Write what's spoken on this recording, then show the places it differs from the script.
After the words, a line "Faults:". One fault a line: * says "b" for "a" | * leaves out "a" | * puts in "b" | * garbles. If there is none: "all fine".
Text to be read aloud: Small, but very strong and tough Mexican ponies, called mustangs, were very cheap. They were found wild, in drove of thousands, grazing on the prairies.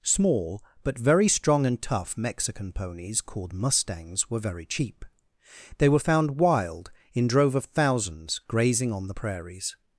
Small, but very strong and tough Mexican ponies, called mustangs, were very cheap. They were found wild, in drove of thousands, grazing on the prairies.
Faults:
all fine